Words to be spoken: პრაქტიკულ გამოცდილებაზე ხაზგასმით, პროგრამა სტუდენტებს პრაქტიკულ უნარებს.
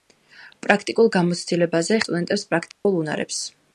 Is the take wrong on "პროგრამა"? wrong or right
wrong